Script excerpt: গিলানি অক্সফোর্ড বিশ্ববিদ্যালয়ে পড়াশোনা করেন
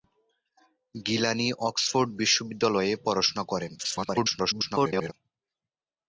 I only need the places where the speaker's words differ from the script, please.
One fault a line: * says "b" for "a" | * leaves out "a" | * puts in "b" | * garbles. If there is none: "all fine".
* garbles